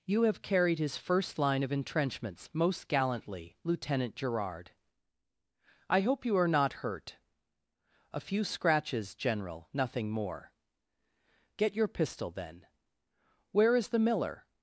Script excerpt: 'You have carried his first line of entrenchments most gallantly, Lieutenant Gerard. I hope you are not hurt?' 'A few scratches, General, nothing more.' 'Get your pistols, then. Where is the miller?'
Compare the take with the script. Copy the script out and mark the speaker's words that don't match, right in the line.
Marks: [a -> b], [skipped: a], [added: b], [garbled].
'You have carried his first line of entrenchments most gallantly, Lieutenant Gerard. I hope you are not hurt?' 'A few scratches, General, nothing more.' 'Get your [pistols, -> pistol] then. Where is the miller?'